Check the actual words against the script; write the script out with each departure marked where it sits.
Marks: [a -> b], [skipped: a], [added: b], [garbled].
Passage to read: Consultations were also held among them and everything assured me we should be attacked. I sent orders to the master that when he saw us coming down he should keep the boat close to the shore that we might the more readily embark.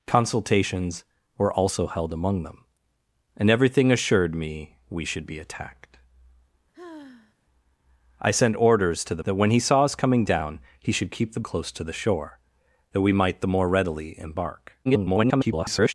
Consultations were also held among them and everything assured me we should be attacked. I sent orders to the [skipped: master] that when he saw us coming down he should keep the [skipped: boat] close to the shore that we might the more readily embark. [garbled]